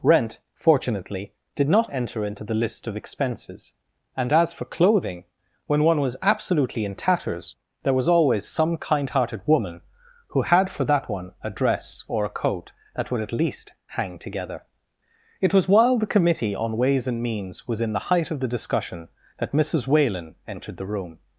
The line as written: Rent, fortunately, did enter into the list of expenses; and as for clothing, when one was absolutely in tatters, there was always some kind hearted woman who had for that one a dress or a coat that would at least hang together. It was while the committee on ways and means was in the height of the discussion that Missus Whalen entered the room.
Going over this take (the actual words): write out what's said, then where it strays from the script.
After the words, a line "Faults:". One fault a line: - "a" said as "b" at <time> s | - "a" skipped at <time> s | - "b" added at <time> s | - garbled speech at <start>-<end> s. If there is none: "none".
Rent, fortunately, did not enter into the list of expenses; and as for clothing, when one was absolutely in tatters, there was always some kind hearted woman who had for that one a dress or a coat that would at least hang together. It was while the committee on ways and means was in the height of the discussion that Missus Whalen entered the room.
Faults:
- "not" added at 1.7 s